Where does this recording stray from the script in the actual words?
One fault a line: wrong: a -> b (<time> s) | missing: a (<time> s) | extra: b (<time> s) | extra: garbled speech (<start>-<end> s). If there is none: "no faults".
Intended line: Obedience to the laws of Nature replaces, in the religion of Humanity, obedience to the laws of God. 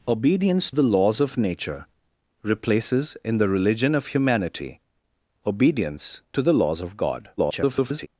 missing: to (0.7 s)
extra: garbled speech (7.4-8.1 s)